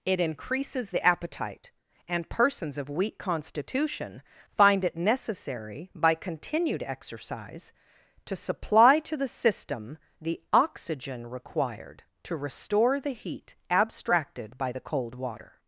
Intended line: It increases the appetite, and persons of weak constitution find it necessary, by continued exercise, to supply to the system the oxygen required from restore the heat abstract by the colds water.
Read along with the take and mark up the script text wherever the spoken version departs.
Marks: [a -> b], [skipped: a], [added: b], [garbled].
It increases the appetite, and persons of weak constitution find it necessary, by continued exercise, to supply to the system the oxygen required [from -> to] restore the heat [abstract -> abstracted] by the [colds -> cold] water.